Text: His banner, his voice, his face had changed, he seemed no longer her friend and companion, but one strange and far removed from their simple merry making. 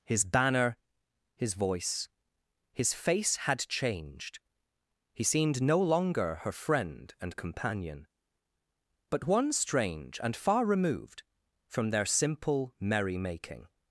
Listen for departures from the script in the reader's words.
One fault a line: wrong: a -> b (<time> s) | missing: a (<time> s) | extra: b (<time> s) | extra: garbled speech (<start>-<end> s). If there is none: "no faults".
no faults